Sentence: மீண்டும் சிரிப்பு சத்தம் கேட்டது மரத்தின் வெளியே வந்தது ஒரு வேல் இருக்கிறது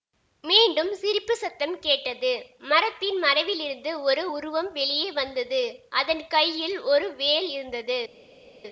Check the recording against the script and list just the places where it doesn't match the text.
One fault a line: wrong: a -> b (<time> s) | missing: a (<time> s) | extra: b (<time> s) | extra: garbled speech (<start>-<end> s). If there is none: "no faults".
extra: மறைவிலிருந்து ஒரு உருவம் (3.2 s)
extra: அதன் கையில் (5.9 s)
wrong: இருக்கிறது -> இருந்தது (7.5 s)